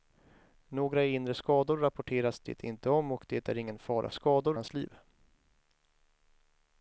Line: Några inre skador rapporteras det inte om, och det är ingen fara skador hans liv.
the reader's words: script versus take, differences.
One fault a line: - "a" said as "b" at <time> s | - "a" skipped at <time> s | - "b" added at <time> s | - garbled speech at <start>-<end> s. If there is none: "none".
none